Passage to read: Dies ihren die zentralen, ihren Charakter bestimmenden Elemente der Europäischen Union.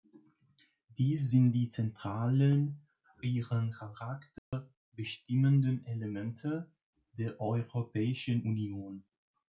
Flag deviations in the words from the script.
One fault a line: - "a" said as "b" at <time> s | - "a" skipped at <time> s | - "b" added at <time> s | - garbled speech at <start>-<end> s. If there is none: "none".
- "ihren" said as "sind" at 1.3 s